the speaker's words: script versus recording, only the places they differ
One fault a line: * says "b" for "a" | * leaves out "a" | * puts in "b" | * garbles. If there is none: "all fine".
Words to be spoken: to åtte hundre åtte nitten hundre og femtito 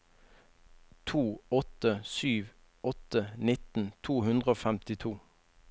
* says "sju" for "hundre"
* puts in "to"